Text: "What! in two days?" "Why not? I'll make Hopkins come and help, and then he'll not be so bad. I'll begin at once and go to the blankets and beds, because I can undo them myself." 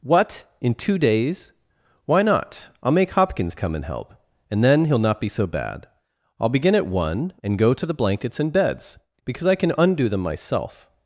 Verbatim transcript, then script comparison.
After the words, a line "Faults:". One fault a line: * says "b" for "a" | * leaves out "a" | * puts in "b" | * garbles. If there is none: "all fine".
"What! in two days?" "Why not? I'll make Hopkins come and help, and then he'll not be so bad. I'll begin at one and go to the blankets and beds, because I can undo them myself."
Faults:
* says "one" for "once"